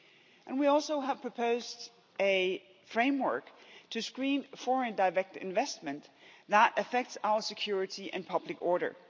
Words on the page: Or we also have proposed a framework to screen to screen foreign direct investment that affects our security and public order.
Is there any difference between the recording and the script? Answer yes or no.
yes